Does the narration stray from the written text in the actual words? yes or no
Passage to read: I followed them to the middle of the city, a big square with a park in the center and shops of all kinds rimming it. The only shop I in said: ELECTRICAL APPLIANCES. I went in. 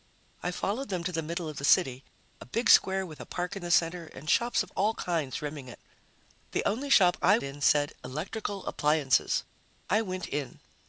no